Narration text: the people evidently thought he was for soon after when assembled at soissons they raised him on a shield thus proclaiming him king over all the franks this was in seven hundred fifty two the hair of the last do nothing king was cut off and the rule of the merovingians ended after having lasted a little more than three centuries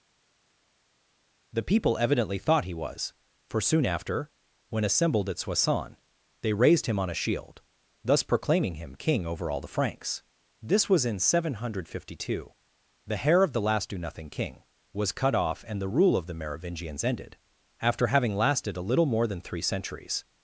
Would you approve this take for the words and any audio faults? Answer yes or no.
yes